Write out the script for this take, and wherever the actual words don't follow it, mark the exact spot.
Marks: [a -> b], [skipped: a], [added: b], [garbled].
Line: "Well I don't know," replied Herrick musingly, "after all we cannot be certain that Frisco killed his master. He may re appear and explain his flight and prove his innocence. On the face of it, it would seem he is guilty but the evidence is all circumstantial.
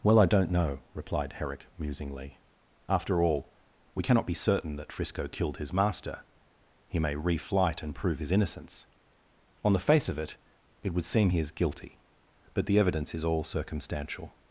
"Well I don't know," replied Herrick musingly, "after all we cannot be certain that Frisco killed his master. He may re [skipped: appear and explain his] flight and prove his innocence. On the face of it, it would seem he is guilty but the evidence is all circumstantial.